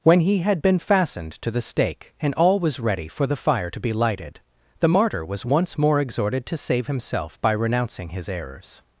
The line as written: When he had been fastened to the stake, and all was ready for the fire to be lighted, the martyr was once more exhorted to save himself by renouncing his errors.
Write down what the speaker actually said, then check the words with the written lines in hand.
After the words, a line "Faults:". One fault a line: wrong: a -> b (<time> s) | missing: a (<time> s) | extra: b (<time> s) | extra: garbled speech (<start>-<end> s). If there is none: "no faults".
When he had been fastened to the stake, and all was ready for the fire to be lighted, the martyr was once more exhorted to save himself by renouncing his errors.
Faults:
no faults